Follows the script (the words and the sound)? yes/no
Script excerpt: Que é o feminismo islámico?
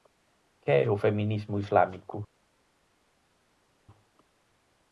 yes